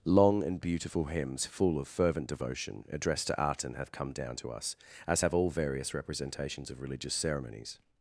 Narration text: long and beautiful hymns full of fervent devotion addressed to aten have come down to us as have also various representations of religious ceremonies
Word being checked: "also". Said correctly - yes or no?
no